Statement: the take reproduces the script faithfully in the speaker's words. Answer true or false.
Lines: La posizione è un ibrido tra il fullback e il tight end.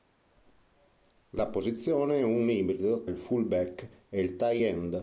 false